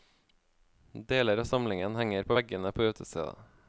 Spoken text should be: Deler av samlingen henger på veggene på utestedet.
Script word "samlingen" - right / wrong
right